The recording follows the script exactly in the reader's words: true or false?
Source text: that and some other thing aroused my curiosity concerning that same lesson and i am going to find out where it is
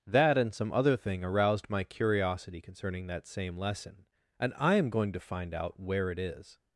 true